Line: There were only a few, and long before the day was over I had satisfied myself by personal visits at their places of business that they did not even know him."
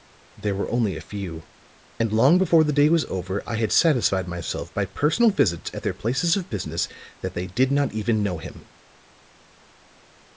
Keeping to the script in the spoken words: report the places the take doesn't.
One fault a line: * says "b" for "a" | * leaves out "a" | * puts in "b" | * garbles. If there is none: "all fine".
all fine